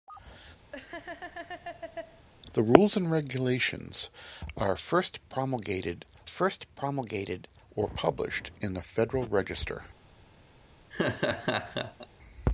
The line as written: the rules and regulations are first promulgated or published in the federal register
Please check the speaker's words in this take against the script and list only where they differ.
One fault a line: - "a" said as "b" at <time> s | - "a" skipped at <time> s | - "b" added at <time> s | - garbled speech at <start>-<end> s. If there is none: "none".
- "first promulgated" added at 6.2 s